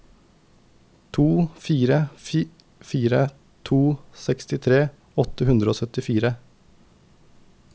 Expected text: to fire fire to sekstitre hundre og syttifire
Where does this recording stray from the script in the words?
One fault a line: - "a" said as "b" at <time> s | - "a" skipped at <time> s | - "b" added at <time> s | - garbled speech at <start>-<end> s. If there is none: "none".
- "åtte" added at 5.2 s